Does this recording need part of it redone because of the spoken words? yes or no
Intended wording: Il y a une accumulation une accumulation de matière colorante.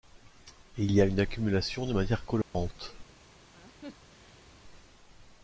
yes